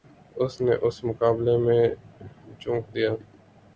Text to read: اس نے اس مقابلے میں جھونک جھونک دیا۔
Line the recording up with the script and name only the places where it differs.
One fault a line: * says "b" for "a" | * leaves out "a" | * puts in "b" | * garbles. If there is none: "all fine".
* leaves out "جھونک"